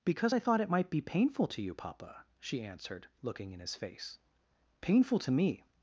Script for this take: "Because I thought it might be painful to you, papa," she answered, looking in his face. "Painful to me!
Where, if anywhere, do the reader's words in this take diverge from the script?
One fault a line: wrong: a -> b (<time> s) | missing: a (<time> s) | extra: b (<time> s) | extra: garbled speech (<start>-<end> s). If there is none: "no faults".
no faults